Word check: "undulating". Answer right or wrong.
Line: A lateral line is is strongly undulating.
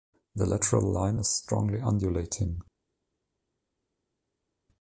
right